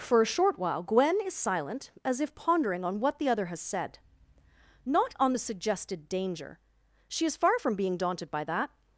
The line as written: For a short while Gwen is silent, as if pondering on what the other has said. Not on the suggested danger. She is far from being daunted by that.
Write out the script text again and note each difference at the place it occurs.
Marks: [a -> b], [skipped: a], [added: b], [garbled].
For a short while Gwen is silent, as if pondering on what the other has said. Not on the suggested danger. She is far from being daunted by that.